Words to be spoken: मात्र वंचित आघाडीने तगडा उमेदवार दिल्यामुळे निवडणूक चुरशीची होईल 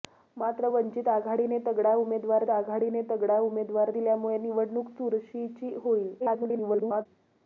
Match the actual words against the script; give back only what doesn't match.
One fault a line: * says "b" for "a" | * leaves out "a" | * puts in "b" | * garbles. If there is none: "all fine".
* puts in "आघाडीने तगडा उमेदवार"
* garbles